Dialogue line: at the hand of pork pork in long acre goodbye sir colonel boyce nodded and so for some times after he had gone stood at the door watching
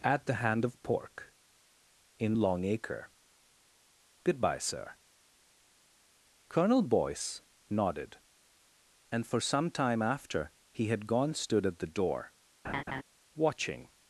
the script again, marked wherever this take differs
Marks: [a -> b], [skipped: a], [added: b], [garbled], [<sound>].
at the hand of pork [skipped: pork] in long acre goodbye sir colonel boyce nodded and [skipped: so] for some [times -> time] after he had gone stood at the door [laugh] watching